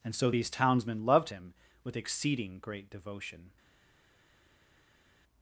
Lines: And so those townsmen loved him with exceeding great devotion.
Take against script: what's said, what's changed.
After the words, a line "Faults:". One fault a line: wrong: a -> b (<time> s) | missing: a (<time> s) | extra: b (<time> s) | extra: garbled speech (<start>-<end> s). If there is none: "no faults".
And so these townsmen loved him with exceeding great devotion.
Faults:
wrong: those -> these (0.3 s)